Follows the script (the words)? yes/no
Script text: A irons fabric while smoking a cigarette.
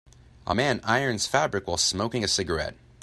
no